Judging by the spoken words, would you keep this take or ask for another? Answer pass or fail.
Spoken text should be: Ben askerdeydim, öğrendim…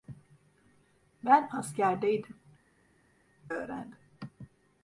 pass